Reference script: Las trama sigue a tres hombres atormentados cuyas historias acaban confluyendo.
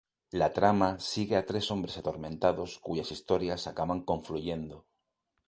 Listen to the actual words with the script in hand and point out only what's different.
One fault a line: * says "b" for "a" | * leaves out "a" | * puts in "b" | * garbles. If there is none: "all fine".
* says "La" for "Las"